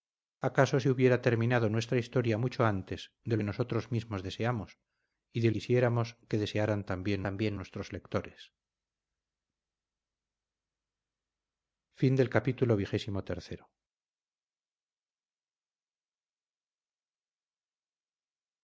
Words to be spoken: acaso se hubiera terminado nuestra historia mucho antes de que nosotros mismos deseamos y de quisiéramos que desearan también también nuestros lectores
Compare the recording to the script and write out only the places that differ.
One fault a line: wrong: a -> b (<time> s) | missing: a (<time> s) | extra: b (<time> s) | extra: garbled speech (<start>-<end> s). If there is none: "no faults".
no faults